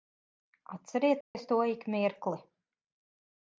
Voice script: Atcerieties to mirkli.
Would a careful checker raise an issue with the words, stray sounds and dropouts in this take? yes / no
yes